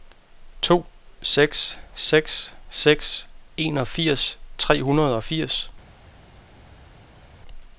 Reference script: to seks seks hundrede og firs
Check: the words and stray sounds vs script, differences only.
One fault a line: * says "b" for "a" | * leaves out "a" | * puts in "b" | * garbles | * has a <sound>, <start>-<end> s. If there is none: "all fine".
* puts in "seks enogfirs tre"